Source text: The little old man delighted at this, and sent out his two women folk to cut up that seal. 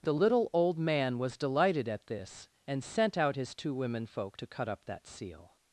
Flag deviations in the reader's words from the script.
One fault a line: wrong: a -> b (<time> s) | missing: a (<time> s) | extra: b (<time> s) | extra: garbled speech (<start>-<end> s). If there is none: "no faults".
extra: was (1.2 s)